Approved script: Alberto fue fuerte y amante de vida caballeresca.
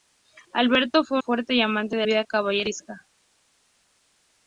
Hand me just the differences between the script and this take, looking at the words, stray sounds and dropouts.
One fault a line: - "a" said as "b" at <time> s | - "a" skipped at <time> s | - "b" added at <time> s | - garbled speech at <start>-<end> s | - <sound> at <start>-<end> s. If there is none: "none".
none